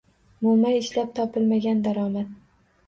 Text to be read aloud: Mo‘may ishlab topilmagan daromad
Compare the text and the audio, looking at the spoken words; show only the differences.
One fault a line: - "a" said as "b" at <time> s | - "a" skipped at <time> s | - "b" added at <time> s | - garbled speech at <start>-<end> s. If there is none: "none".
none